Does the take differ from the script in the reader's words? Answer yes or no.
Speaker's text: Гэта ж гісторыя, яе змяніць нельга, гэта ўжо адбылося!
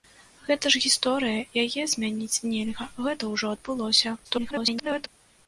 yes